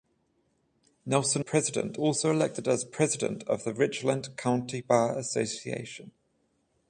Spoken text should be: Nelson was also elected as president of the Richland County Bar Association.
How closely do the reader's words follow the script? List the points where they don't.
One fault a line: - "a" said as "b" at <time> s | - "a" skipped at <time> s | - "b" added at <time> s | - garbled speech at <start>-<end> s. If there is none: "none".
- "was" said as "president" at 1.4 s